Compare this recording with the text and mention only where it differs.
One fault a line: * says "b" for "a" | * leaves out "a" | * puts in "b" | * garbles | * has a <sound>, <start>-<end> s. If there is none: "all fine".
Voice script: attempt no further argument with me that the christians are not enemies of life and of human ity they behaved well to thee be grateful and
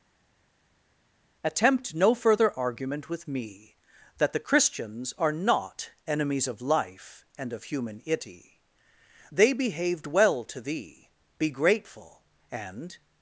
all fine